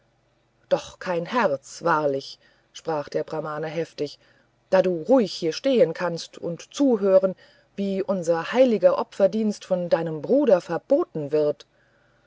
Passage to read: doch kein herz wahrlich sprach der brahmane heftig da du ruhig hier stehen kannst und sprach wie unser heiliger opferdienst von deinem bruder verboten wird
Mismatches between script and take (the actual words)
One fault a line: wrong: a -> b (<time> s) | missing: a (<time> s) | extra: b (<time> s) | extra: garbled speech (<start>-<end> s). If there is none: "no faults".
wrong: sprach -> zuhören (6.7 s)